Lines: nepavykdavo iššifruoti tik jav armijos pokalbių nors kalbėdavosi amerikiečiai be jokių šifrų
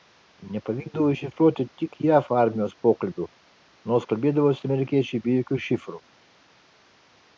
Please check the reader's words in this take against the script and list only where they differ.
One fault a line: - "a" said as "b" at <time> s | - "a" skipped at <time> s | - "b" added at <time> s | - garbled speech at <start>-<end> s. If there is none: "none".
none